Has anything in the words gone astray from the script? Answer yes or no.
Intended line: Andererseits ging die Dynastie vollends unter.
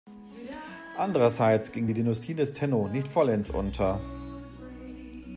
yes